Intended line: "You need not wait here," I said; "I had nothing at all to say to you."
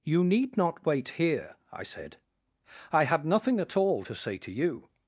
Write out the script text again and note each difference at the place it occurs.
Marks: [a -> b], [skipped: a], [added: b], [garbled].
"You need not wait here," I said; "I had nothing at all to say to you."